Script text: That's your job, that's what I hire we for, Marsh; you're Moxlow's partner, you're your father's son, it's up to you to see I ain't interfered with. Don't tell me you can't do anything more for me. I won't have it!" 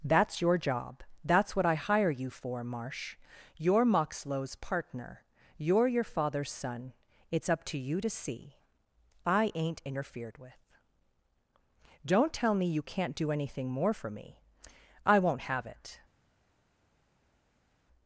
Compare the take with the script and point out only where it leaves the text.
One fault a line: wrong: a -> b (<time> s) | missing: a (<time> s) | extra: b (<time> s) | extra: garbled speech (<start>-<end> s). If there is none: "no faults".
wrong: we -> you (2.1 s)